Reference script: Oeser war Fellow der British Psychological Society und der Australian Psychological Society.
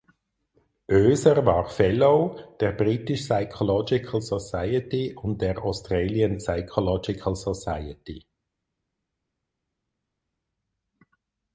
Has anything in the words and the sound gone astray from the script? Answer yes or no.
no